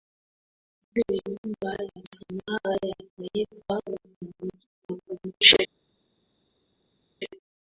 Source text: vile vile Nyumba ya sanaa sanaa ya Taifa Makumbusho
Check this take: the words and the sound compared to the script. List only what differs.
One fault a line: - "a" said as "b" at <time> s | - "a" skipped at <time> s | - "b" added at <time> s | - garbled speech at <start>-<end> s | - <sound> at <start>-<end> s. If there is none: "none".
- "vile" skipped at 1.2 s
- "sanaa" skipped at 2.8 s